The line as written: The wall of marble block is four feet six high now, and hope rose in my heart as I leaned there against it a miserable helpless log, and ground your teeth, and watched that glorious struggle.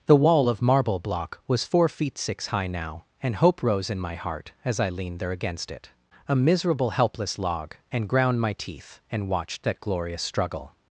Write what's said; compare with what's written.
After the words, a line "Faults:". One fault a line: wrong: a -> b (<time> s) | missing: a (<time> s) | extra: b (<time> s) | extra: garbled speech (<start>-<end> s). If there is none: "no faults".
The wall of marble block was four feet six high now, and hope rose in my heart as I leaned there against it a miserable helpless log, and ground my teeth, and watched that glorious struggle.
Faults:
wrong: is -> was (1.5 s)
wrong: your -> my (8.4 s)